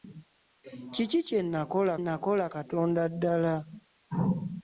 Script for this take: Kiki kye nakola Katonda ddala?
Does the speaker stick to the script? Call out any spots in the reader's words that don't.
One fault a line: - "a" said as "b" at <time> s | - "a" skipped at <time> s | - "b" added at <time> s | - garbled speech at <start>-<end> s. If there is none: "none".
- "nakola" added at 2.0 s